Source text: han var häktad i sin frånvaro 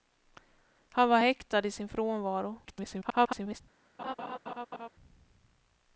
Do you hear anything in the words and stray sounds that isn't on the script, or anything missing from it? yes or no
yes